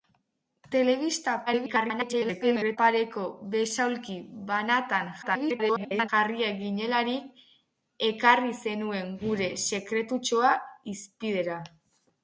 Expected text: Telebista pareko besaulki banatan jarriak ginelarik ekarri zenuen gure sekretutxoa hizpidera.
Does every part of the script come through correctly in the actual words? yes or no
no